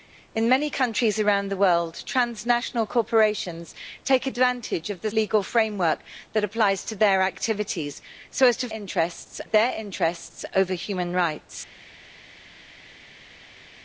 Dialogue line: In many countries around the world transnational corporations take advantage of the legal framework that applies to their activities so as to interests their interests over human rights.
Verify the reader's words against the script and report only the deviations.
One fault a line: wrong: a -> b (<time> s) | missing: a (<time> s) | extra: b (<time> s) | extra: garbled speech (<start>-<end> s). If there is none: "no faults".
no faults